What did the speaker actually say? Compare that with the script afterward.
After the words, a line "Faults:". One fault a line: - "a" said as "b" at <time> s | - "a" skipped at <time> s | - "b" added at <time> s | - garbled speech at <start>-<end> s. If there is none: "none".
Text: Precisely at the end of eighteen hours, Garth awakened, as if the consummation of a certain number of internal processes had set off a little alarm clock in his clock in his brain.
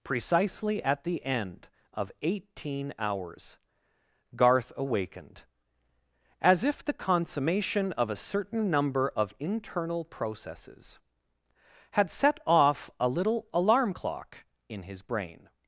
Precisely at the end of eighteen hours, Garth awakened, as if the consummation of a certain number of internal processes had set off a little alarm clock in his brain.
Faults:
- "clock in his" skipped at 15.0 s